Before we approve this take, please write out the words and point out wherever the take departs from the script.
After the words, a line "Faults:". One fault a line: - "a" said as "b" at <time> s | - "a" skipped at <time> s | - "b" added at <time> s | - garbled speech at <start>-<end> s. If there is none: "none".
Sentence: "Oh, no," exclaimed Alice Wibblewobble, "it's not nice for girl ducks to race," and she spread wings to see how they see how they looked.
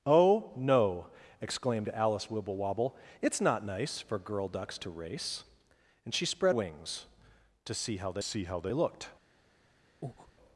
"Oh, no," exclaimed Alice Wibblewobble, "it's not nice for girl ducks to race," and she spread wings to see how they see how they looked.
Faults:
none